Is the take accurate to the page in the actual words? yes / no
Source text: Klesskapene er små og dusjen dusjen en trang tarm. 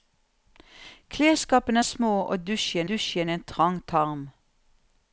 yes